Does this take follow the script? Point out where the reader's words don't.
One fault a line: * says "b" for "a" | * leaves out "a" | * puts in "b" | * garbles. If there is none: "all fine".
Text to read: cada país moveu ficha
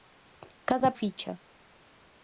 * leaves out "país moveu"